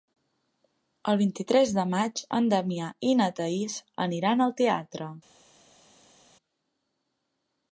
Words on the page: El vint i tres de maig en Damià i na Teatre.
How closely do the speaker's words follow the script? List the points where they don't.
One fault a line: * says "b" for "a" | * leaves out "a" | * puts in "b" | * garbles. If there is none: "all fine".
* puts in "Thaís aniran al"